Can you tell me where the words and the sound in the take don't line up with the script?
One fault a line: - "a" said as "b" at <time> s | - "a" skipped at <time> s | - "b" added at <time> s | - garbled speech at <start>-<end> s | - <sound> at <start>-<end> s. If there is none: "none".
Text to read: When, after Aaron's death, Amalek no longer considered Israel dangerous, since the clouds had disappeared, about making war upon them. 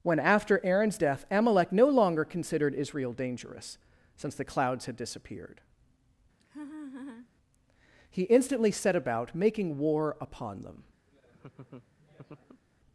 - laugh at 6.4-7.3 s
- "he instantly set" added at 8.1 s
- laugh at 11.1-12.6 s